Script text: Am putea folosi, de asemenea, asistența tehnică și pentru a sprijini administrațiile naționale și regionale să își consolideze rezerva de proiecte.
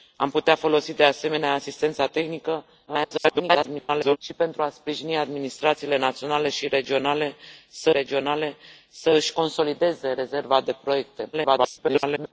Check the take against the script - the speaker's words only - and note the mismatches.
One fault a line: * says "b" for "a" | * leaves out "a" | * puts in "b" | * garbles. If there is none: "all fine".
* garbles
* puts in "regionale să"
* garbles